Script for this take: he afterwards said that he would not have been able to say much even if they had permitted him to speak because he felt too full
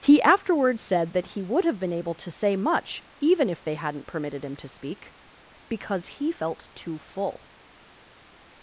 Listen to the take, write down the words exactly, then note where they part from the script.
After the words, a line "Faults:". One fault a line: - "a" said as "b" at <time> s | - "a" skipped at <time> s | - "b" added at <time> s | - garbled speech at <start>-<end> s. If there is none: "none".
he afterwards said that he would have been able to say much even if they hadn't permitted him to speak because he felt too full
Faults:
- "not" skipped at 1.6 s
- "had" said as "hadn't" at 3.7 s